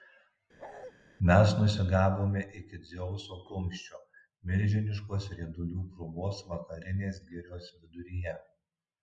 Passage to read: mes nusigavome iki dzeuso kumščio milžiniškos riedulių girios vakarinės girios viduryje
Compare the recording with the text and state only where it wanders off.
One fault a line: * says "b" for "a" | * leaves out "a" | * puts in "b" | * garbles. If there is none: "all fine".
* says "krūvos" for "girios"